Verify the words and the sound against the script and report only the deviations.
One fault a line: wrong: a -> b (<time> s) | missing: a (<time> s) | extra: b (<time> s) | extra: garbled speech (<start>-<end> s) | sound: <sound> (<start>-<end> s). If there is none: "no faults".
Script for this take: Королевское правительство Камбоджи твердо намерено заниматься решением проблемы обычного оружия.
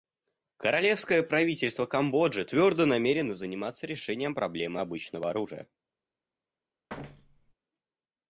sound: thud (6.9-7.5 s)